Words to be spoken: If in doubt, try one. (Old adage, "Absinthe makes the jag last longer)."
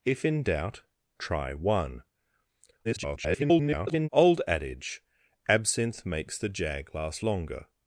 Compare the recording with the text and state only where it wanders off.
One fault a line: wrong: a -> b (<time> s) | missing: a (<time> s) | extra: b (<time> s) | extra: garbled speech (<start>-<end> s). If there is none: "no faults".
extra: garbled speech (2.8-4.1 s)